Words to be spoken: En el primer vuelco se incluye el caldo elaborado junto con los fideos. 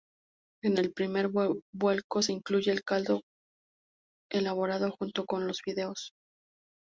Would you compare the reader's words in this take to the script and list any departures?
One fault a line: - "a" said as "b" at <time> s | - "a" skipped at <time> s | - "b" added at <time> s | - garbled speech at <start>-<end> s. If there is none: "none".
none